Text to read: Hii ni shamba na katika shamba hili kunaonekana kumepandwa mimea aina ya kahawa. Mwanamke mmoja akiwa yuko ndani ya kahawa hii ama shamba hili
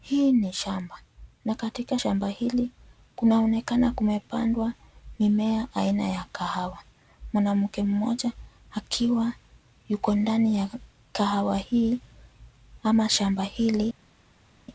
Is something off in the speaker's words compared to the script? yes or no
no